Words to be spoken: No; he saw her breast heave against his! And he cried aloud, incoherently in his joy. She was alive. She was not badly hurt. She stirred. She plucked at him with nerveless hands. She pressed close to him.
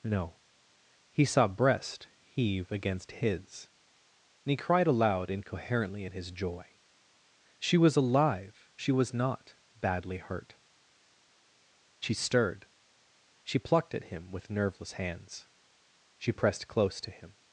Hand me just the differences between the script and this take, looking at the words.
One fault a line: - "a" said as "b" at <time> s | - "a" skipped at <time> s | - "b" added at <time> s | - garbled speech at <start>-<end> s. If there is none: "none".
- "her" skipped at 1.5 s